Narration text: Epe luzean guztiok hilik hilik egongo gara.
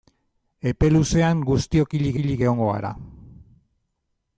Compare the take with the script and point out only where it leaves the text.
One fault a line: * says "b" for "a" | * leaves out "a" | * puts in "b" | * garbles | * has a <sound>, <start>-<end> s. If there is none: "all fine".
all fine